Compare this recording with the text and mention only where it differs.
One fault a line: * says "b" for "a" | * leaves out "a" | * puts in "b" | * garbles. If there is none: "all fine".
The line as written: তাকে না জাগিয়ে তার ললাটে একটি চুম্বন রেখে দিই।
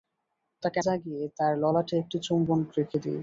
* leaves out "না"